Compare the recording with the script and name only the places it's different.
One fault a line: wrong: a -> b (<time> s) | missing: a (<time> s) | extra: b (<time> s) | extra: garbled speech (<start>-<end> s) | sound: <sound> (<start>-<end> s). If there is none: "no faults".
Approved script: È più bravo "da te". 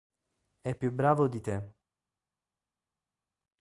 wrong: da -> di (1.3 s)